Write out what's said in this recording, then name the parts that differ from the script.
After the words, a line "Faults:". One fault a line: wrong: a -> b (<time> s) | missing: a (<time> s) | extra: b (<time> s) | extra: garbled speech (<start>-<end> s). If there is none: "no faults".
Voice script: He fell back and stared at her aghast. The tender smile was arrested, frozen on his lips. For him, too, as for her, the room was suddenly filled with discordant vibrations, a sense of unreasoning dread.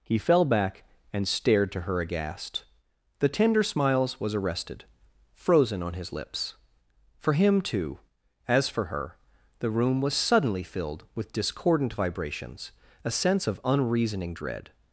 He fell back and stared to her aghast. The tender smiles was arrested, frozen on his lips. For him, too, as for her, the room was suddenly filled with discordant vibrations, a sense of unreasoning dread.
Faults:
wrong: at -> to (1.7 s)
wrong: smile -> smiles (3.6 s)